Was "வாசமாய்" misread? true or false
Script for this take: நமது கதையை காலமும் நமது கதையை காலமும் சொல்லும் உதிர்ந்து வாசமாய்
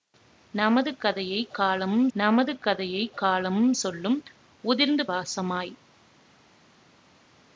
false